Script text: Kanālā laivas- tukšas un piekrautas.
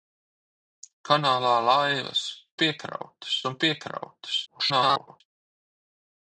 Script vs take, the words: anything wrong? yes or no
yes